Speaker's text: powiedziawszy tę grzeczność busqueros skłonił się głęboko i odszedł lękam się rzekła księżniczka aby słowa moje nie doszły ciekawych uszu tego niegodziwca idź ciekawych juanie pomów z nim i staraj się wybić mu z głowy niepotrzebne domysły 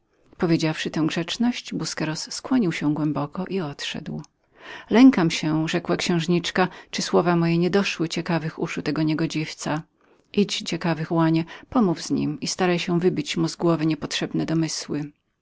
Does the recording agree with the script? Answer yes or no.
yes